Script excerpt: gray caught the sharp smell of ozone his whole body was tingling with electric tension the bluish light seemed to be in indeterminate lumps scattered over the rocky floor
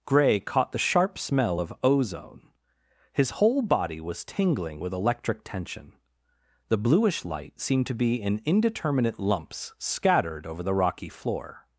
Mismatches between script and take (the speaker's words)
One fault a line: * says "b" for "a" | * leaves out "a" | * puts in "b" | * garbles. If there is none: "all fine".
all fine